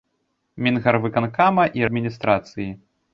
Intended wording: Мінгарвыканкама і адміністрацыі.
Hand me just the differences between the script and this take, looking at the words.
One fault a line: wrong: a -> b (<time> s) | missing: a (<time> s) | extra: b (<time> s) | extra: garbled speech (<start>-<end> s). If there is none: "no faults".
no faults